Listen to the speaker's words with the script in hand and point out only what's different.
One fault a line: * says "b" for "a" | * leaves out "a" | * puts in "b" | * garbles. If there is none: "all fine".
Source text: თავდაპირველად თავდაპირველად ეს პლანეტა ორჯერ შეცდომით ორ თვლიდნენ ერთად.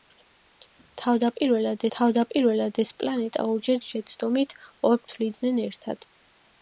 all fine